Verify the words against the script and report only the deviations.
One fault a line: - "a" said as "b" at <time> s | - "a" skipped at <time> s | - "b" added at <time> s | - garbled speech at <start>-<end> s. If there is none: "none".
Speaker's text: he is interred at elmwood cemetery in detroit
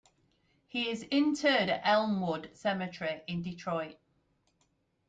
none